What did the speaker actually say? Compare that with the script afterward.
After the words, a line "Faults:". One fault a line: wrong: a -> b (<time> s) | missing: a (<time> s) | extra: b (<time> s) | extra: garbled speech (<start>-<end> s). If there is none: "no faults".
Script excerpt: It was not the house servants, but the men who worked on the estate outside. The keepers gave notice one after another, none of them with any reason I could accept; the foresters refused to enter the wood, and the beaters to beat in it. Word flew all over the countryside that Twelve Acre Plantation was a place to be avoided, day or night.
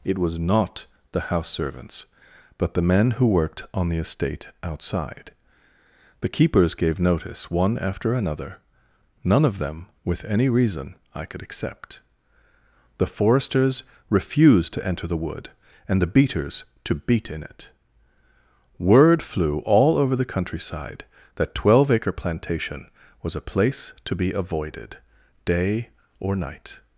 It was not the house servants, but the men who worked on the estate outside. The keepers gave notice one after another, none of them with any reason I could accept; the foresters refused to enter the wood, and the beaters to beat in it. Word flew all over the countryside that Twelve Acre Plantation was a place to be avoided, day or night.
Faults:
no faults